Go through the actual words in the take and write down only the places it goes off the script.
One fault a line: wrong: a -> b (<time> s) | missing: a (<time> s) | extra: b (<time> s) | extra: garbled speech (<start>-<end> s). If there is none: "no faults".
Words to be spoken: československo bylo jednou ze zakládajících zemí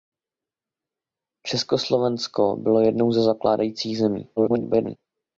extra: garbled speech (4.4-5.0 s)